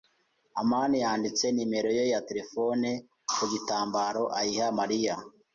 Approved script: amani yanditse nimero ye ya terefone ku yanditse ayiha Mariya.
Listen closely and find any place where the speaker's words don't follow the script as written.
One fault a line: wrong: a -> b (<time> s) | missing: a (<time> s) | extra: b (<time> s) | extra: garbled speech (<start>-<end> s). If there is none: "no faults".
wrong: yanditse -> gitambaro (3.5 s)